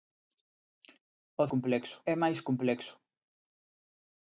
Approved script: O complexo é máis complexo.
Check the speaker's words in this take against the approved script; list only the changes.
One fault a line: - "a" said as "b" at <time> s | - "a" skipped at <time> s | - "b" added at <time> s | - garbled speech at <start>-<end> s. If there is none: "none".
none